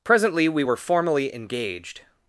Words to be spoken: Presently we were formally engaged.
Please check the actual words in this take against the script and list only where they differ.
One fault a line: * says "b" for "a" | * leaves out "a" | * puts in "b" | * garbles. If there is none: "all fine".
all fine